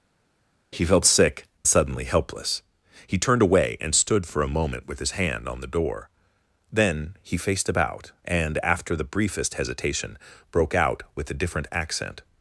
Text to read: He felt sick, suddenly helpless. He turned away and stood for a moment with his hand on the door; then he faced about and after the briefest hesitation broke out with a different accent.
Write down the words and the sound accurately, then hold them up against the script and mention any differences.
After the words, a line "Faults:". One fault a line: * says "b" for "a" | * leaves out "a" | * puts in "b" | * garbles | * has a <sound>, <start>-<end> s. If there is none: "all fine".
He felt sick, suddenly helpless. He turned away and stood for a moment with his hand on the door; then he faced about and after the briefest hesitation broke out with a different accent.
Faults:
all fine